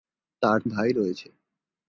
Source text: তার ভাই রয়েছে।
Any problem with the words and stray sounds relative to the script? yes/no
no